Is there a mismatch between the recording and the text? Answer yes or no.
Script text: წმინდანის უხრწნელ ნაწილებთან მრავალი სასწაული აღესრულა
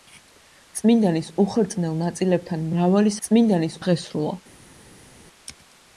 yes